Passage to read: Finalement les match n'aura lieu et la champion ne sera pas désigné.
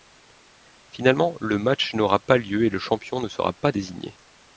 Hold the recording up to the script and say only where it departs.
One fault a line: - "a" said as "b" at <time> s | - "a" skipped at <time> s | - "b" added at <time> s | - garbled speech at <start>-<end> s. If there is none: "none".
- "les" said as "le" at 1.4 s
- "pas" added at 2.2 s
- "la" said as "le" at 2.7 s